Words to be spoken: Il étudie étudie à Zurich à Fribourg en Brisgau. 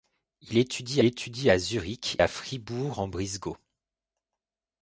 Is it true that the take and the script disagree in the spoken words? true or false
false